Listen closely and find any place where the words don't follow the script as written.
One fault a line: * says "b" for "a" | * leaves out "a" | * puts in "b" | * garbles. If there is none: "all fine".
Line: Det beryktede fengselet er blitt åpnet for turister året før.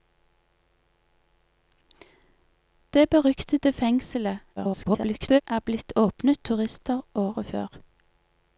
* garbles
* leaves out "for"